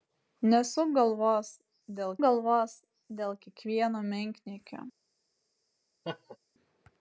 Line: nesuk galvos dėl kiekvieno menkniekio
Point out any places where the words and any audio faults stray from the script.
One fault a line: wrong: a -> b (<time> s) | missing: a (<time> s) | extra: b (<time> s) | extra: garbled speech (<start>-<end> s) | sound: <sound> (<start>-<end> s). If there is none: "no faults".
extra: galvos dėl (2.2 s)
sound: laugh (6.0-6.4 s)